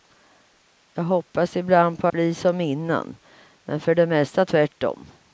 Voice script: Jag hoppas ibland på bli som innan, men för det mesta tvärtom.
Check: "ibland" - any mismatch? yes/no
no